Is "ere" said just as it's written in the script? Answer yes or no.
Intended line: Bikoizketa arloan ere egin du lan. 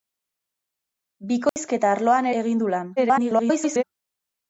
no